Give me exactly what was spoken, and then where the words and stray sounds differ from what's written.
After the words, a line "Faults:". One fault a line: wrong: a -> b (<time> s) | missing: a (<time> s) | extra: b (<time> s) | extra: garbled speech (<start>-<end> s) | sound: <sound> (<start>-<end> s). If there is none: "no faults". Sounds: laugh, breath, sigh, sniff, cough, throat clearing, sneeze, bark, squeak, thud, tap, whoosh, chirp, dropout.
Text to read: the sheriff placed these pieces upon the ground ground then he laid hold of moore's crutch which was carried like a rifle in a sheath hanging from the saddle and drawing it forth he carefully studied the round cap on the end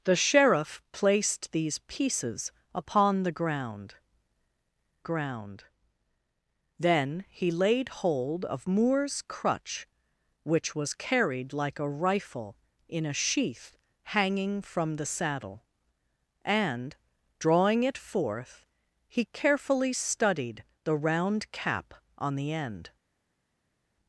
the sheriff placed these pieces upon the ground ground then he laid hold of moore's crutch which was carried like a rifle in a sheath hanging from the saddle and drawing it forth he carefully studied the round cap on the end
Faults:
no faults